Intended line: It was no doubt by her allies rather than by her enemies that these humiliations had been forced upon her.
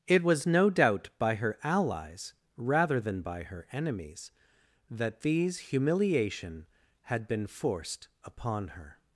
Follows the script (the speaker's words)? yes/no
no